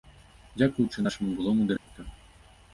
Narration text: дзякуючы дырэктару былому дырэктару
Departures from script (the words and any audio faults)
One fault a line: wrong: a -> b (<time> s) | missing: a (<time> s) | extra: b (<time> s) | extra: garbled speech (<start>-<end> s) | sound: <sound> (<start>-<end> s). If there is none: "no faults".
wrong: дырэктару -> нашаму (1.0 s)
sound: dropout (1.8-1.9 s)